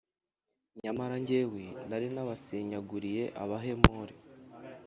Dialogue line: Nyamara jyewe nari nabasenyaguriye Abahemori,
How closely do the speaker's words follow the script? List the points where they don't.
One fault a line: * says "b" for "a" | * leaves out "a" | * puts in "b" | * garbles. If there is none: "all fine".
all fine